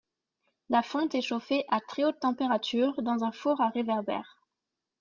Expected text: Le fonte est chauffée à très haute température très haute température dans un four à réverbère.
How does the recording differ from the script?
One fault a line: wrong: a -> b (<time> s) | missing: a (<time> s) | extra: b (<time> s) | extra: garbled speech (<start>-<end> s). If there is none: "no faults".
wrong: Le -> La (0.7 s)
missing: très haute température (3.0 s)